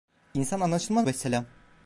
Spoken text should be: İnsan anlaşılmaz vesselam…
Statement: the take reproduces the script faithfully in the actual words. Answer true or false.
true